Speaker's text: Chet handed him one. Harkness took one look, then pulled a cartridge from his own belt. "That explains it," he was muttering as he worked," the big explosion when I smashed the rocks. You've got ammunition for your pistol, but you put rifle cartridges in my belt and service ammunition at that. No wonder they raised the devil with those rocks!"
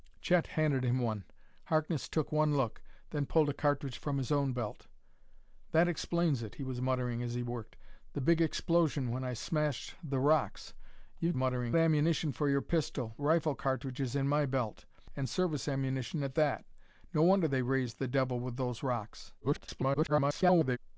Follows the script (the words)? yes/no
no